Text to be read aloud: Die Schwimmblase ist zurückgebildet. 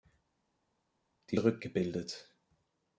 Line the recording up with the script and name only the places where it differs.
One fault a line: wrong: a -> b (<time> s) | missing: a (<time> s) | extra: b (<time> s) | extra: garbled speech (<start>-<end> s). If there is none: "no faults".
missing: Schwimmblase ist (1.4 s)